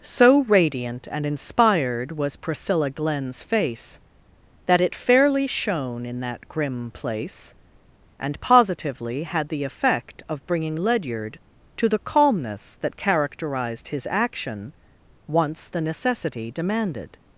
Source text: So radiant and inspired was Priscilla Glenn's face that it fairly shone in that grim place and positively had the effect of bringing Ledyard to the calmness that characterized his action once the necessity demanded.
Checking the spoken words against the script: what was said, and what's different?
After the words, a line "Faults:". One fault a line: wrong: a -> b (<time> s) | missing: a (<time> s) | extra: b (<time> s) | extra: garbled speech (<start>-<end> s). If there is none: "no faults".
So radiant and inspired was Priscilla Glenn's face that it fairly shone in that grim place and positively had the effect of bringing Ledyard to the calmness that characterized his action once the necessity demanded.
Faults:
no faults